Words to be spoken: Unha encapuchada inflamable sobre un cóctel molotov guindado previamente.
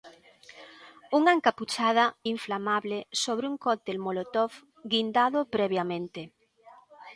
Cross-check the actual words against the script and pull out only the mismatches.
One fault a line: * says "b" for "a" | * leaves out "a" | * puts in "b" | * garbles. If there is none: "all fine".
all fine